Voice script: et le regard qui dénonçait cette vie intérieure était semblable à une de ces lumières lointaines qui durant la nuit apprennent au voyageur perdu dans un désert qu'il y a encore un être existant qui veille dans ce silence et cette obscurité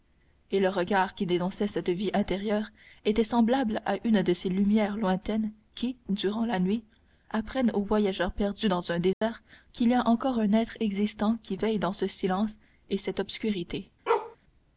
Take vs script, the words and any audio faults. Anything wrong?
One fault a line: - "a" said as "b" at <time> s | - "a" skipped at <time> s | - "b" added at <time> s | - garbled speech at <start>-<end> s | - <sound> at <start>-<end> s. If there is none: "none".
- dropout at 9.1-9.2 s
- bark at 14.1-14.4 s